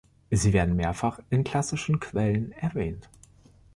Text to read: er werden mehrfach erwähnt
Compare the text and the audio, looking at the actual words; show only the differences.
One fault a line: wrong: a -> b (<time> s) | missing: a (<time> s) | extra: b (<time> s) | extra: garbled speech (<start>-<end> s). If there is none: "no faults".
wrong: er -> sie (0.3 s)
extra: in klassischen quellen (1.3 s)